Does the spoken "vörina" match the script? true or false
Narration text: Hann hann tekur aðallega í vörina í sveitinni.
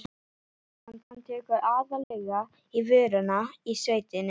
true